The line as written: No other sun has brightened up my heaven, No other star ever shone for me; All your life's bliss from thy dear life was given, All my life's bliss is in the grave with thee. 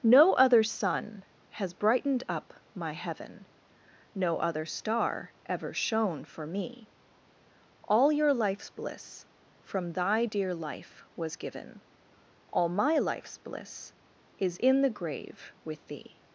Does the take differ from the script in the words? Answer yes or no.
no